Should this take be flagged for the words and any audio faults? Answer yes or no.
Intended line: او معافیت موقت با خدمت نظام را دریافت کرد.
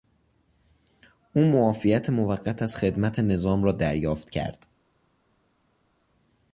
yes